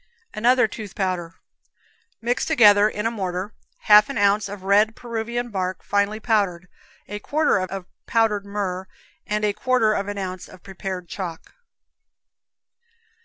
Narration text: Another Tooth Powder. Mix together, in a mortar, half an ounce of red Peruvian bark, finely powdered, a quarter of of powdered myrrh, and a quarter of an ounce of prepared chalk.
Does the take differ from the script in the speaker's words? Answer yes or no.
no